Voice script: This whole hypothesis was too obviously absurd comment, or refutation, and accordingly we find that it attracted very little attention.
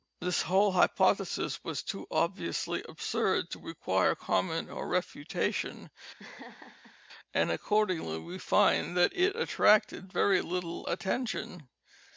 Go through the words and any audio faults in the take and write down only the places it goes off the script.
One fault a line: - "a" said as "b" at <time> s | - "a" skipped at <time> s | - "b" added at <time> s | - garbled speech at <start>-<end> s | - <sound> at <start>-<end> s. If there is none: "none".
- "to require" added at 3.5 s
- laugh at 6.2-7.0 s